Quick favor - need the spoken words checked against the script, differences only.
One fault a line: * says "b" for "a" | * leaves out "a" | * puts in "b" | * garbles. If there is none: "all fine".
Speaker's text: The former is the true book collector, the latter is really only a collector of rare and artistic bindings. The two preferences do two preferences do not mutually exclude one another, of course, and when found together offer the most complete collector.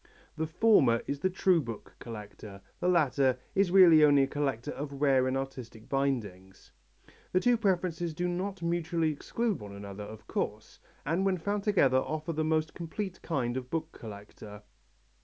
* leaves out "two preferences do"
* puts in "kind of book"